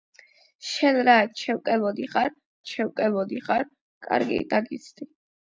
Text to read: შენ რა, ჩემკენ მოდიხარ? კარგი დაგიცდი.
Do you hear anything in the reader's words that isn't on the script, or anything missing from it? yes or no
yes